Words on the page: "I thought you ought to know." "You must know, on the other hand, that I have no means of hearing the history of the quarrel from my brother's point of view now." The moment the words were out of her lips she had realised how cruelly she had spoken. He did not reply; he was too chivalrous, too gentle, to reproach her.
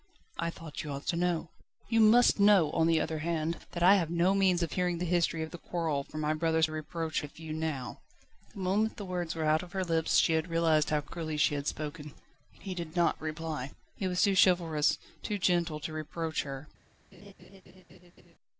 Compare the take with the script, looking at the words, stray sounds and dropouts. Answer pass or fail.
fail